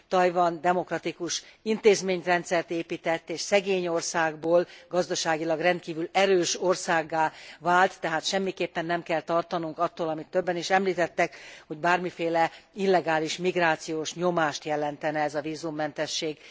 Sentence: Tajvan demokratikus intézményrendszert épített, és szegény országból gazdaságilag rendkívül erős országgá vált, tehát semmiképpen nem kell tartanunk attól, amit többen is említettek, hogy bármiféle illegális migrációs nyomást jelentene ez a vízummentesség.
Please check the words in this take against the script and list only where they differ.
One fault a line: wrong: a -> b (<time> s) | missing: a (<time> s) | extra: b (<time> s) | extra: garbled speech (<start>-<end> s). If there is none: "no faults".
no faults